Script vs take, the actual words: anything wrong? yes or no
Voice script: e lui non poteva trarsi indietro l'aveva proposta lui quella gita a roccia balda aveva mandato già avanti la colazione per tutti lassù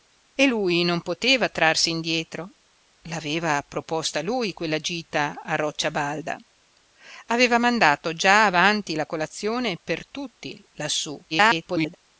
yes